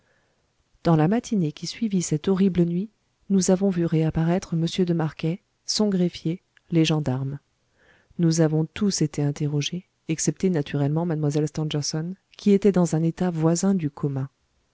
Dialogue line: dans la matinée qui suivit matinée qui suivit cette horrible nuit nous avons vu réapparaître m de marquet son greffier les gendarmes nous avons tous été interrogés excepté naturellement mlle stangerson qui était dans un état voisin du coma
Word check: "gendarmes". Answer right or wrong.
right